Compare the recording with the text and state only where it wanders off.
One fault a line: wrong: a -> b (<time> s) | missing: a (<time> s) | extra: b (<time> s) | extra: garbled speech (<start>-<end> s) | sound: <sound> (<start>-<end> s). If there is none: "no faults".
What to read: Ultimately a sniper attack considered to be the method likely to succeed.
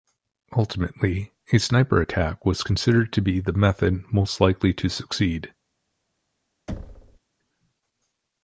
extra: was (2.5 s)
extra: most (4.1 s)
sound: thud (6.7-7.2 s)